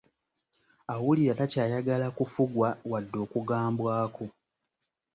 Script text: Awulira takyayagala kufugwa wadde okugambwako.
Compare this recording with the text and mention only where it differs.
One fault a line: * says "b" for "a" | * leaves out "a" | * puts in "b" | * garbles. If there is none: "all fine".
all fine